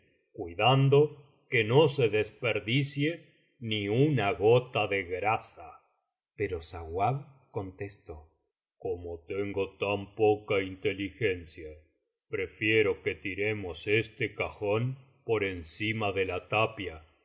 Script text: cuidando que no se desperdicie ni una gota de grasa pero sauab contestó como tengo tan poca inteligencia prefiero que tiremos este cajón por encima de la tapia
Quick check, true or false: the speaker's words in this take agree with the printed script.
true